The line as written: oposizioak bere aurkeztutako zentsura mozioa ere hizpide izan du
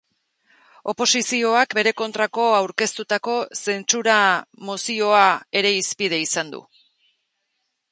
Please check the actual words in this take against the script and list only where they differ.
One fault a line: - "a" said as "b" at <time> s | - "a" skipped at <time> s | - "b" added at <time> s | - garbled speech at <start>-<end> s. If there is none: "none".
- "kontrako" added at 2.0 s